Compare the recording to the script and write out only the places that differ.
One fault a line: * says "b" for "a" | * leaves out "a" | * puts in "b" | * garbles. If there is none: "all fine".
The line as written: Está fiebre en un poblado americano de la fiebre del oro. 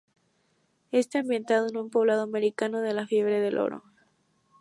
* says "ambientado" for "fiebre"